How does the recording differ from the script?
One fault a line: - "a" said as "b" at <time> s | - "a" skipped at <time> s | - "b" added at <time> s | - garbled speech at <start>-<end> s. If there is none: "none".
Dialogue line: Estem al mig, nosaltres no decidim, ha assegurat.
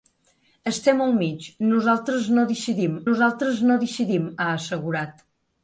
- "nosaltres no decidim" added at 3.1 s